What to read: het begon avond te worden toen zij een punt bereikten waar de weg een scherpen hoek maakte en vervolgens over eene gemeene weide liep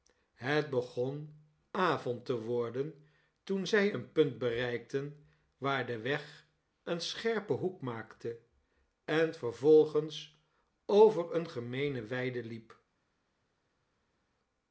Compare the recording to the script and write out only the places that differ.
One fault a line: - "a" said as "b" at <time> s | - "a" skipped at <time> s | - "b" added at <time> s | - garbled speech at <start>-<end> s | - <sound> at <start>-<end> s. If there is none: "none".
none